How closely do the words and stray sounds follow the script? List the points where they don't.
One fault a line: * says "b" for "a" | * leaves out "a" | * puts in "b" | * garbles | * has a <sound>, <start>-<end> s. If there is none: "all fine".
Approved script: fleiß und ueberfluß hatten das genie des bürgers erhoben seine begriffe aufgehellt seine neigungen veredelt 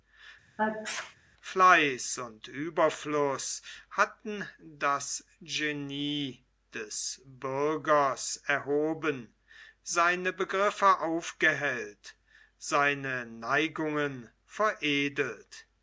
* has a sneeze, 0.6-1.2 s